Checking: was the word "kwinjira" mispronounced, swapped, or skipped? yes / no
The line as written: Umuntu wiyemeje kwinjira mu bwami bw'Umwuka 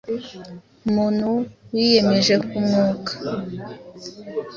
yes